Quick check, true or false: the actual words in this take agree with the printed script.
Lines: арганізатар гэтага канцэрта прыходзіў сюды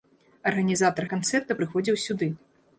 false